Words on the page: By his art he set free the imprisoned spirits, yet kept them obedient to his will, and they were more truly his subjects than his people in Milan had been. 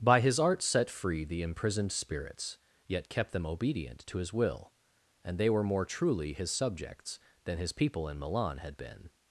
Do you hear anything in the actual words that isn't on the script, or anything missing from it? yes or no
yes